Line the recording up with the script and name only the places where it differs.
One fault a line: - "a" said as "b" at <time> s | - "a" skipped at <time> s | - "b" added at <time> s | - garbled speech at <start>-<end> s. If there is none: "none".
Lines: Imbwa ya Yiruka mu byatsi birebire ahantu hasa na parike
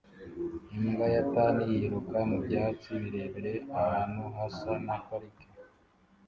- "Tan" added at 1.3 s